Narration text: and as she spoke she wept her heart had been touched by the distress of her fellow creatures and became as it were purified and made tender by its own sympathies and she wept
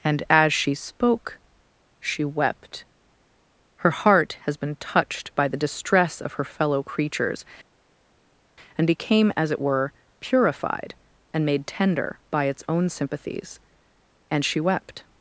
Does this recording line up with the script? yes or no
no